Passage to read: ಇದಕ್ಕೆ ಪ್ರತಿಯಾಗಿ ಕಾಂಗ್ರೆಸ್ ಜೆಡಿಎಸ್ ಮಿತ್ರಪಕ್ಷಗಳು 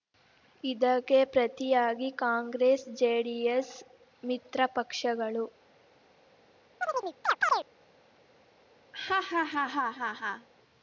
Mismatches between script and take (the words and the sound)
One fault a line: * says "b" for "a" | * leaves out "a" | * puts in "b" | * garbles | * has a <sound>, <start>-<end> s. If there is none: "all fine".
* has a chirp, 6.8-7.7 s
* has a laugh, 8.9-10.5 s